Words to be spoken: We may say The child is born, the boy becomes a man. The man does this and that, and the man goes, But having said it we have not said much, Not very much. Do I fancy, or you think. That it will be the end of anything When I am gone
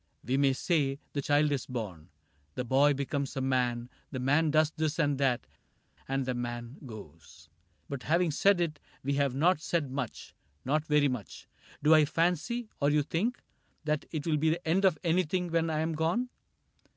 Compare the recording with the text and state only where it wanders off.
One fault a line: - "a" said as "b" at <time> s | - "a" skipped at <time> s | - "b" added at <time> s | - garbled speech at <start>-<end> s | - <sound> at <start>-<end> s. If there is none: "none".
none